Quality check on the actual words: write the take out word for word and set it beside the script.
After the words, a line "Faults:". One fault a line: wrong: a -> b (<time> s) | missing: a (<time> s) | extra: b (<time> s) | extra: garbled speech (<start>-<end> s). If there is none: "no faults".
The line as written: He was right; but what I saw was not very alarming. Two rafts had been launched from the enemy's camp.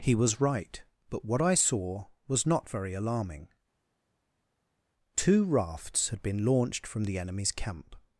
He was right; but what I saw was not very alarming. Two rafts had been launched from the enemy's camp.
Faults:
no faults